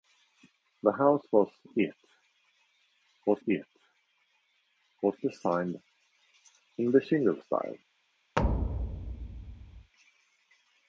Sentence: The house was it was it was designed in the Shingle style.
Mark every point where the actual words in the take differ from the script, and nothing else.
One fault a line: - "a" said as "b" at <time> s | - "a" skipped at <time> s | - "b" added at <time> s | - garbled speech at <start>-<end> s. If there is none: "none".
none